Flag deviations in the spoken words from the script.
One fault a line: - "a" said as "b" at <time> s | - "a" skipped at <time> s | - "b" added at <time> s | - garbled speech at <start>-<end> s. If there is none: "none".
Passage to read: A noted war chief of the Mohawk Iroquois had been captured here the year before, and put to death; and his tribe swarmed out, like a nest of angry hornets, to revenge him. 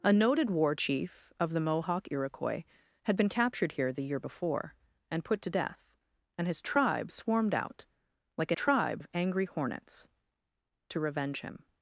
- "nest" said as "tribe" at 8.5 s